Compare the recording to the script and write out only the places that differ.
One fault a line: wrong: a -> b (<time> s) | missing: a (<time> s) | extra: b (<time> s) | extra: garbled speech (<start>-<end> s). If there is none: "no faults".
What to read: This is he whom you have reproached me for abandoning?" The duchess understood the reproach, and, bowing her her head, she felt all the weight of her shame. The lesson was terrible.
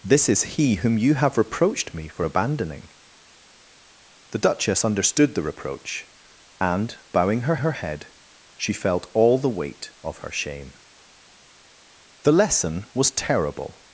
no faults